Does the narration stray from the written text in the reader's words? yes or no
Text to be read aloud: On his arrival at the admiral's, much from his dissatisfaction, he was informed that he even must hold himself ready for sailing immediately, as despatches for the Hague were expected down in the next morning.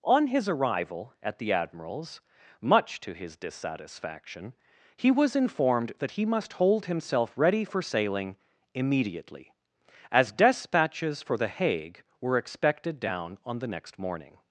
yes